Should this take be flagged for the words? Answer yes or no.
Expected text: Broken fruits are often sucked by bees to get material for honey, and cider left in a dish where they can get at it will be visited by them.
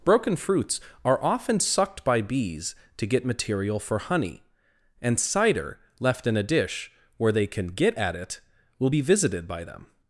no